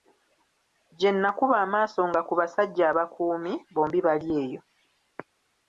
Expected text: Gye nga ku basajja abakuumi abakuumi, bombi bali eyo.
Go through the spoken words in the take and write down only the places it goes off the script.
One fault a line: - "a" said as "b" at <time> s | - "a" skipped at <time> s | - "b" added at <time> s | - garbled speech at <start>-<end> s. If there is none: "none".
- "nakuba amaaso" added at 1.2 s
- "abakuumi" skipped at 3.5 s